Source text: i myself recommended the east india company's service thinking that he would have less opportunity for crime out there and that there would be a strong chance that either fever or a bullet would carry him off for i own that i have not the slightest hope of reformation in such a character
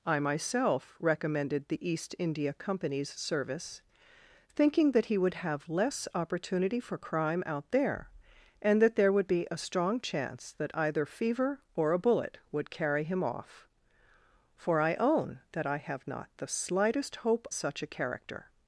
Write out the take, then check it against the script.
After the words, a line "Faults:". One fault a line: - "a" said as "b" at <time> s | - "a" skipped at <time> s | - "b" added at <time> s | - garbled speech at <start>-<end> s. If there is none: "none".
i myself recommended the east india company's service thinking that he would have less opportunity for crime out there and that there would be a strong chance that either fever or a bullet would carry him off for i own that i have not the slightest hope such a character
Faults:
- "of reformation in" skipped at 17.5 s